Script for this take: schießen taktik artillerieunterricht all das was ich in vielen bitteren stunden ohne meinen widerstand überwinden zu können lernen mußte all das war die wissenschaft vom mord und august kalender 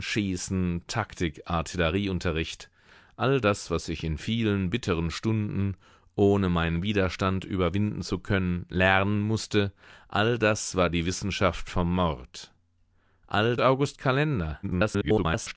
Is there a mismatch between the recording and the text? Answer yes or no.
yes